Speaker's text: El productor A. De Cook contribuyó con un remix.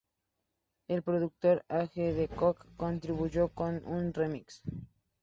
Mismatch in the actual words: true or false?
true